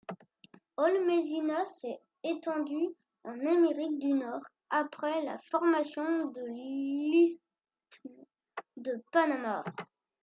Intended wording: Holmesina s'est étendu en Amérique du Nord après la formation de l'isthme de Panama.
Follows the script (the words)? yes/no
yes